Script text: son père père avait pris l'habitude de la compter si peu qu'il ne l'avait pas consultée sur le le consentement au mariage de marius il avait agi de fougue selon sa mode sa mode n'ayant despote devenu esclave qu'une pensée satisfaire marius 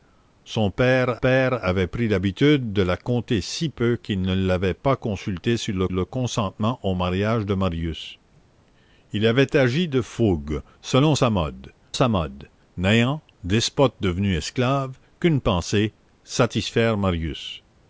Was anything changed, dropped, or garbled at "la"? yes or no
no